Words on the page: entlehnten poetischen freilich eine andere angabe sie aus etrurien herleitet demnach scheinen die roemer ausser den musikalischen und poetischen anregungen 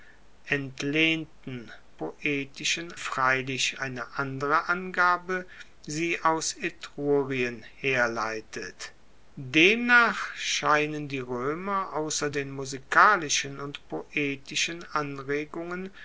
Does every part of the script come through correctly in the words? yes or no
yes